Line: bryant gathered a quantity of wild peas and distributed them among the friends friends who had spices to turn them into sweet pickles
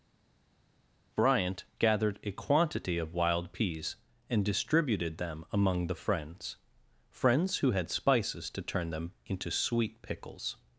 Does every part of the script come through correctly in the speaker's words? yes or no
yes